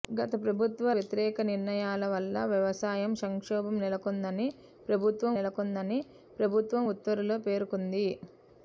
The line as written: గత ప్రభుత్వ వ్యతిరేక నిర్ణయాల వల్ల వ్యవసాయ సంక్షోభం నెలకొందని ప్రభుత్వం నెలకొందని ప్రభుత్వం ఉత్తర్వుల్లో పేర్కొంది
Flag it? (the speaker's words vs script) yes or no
no